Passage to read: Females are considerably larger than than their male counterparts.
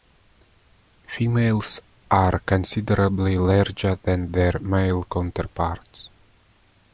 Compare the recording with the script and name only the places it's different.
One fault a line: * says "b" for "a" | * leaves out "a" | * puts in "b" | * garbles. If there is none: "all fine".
* leaves out "than"